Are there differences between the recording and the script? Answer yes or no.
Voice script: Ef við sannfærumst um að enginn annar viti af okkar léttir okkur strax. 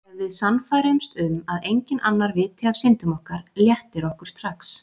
yes